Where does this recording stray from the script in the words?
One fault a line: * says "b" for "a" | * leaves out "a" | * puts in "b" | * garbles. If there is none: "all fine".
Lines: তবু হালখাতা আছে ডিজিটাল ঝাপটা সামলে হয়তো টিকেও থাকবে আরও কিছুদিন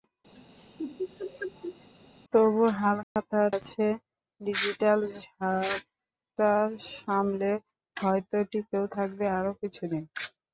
all fine